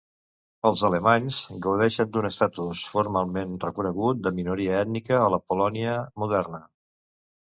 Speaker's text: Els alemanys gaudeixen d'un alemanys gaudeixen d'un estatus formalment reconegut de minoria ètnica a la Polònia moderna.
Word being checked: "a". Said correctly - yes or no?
yes